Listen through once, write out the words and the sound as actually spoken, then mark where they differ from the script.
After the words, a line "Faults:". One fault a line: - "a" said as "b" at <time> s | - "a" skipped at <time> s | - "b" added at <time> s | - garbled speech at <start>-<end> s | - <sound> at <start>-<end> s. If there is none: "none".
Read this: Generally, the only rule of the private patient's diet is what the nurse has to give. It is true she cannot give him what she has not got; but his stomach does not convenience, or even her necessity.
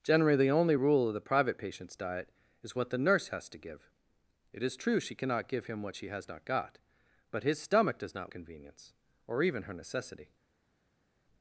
Generally, the only rule of the private patient's diet is what the nurse has to give. It is true she cannot give him what she has not got; but his stomach does not convenience, or even her necessity.
Faults:
none